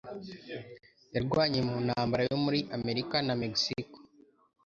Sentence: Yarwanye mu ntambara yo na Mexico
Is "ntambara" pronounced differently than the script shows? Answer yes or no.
no